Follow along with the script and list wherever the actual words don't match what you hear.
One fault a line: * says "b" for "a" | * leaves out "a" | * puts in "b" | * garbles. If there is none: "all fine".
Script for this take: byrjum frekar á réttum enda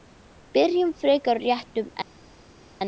all fine